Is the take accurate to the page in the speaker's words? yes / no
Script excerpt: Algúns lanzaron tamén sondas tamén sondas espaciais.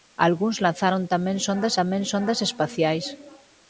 yes